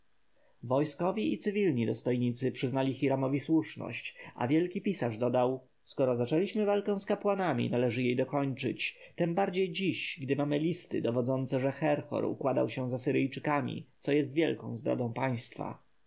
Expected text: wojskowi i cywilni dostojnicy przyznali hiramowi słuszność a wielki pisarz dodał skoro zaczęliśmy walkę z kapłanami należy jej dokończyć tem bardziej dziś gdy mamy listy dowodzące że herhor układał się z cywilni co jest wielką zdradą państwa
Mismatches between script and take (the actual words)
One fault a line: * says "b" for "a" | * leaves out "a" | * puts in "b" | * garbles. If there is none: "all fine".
* says "asyryjczykami" for "cywilni"